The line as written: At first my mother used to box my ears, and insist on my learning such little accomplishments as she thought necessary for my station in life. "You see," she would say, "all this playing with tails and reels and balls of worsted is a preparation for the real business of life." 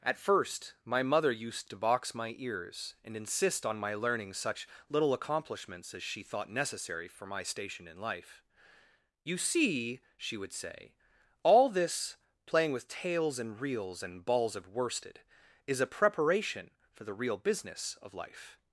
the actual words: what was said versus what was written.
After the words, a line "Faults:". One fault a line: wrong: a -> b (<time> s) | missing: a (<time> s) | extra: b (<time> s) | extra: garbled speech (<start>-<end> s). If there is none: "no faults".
At first my mother used to box my ears, and insist on my learning such little accomplishments as she thought necessary for my station in life. "You see," she would say, "all this playing with tails and reels and balls of worsted is a preparation for the real business of life."
Faults:
no faults